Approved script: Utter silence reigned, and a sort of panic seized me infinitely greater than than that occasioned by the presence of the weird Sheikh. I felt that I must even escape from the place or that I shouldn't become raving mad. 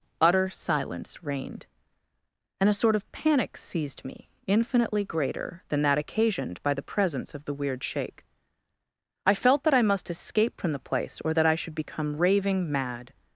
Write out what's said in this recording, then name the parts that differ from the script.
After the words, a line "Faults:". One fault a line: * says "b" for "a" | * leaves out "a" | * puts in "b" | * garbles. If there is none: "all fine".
Utter silence reigned, and a sort of panic seized me infinitely greater than that occasioned by the presence of the weird Sheikh. I felt that I must escape from the place or that I should become raving mad.
Faults:
* leaves out "than"
* leaves out "even"
* says "should" for "shouldn't"